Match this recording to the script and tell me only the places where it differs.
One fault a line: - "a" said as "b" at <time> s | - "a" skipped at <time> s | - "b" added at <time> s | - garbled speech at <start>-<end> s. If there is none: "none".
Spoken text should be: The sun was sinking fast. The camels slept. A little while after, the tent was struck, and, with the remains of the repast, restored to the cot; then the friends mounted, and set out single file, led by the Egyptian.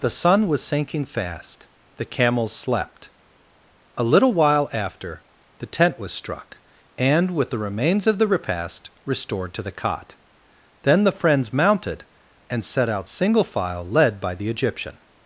none